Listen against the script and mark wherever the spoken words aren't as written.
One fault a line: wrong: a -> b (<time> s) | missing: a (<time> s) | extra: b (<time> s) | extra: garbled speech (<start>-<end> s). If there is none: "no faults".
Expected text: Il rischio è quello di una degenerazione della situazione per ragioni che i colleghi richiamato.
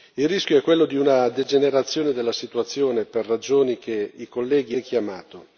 no faults